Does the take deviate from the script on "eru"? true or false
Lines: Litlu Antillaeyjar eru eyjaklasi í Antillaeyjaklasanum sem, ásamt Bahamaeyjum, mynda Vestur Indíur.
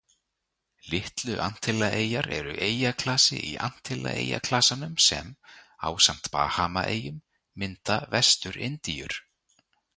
false